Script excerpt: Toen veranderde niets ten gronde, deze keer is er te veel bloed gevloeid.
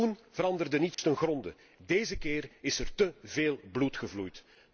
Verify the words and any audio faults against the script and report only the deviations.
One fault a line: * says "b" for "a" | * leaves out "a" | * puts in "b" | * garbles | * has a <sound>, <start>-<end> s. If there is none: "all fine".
* has a dropout, 0.9-1.0 s